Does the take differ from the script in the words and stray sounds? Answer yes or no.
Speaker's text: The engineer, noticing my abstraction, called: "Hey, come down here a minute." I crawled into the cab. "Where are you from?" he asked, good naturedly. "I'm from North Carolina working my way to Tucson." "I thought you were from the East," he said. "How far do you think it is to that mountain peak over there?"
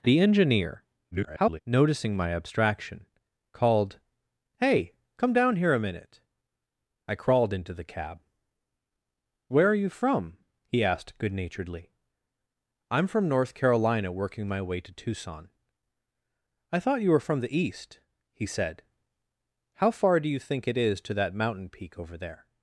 yes